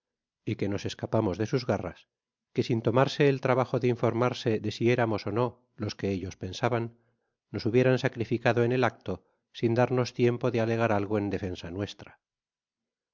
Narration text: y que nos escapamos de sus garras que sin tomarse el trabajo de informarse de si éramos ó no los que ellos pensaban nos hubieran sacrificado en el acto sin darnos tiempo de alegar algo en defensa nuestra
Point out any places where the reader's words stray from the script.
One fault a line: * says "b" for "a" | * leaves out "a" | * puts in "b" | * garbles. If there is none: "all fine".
all fine